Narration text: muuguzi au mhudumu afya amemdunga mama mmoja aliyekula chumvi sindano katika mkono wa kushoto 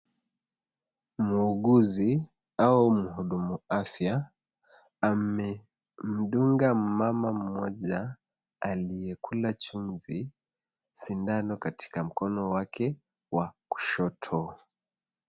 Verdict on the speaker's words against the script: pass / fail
fail